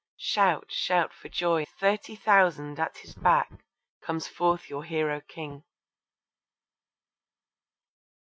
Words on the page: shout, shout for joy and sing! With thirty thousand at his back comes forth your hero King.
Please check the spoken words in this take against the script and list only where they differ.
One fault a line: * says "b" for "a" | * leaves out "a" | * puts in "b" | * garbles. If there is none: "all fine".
* leaves out "and sing With"